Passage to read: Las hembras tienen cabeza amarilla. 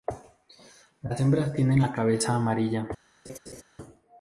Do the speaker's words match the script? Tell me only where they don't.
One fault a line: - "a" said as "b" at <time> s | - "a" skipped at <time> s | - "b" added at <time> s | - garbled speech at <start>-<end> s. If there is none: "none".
- "la" added at 1.8 s